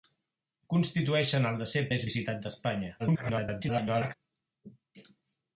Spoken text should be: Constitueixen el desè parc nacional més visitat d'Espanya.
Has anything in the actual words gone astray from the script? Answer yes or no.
yes